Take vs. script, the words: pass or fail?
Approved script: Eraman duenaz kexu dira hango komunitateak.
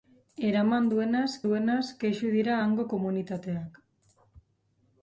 fail